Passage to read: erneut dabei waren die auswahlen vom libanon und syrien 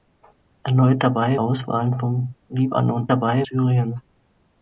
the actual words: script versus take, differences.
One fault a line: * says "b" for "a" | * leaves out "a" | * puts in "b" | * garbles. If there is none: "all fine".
* leaves out "waren die"
* says "dabei" for "und"